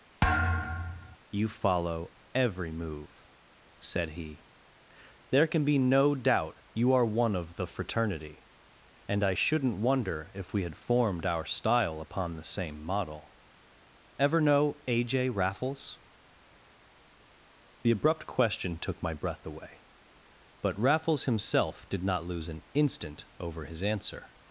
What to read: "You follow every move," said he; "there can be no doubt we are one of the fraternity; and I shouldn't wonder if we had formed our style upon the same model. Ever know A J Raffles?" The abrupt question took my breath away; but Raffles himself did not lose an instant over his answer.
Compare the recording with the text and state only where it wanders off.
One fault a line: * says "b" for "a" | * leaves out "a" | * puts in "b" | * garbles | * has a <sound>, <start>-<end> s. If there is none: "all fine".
* has a thud, 0.2-1.2 s
* says "you" for "we"